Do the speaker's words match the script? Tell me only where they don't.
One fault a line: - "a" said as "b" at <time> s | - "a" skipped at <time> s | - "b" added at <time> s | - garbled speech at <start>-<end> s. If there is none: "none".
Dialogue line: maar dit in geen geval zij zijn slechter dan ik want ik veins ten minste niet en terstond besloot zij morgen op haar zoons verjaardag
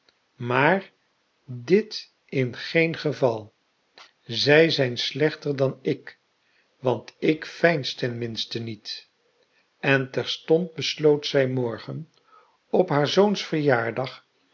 none